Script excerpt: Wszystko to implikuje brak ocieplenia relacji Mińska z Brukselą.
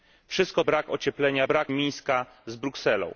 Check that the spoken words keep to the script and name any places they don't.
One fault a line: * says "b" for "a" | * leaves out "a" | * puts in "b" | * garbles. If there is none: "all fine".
* leaves out "to implikuje"
* says "brak" for "relacji"